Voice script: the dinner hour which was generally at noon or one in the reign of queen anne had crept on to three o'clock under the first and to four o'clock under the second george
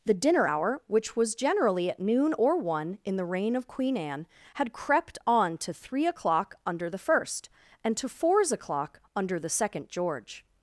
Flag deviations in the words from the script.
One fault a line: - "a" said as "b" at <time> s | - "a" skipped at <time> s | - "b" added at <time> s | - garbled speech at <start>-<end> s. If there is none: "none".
- "four" said as "fours" at 8.1 s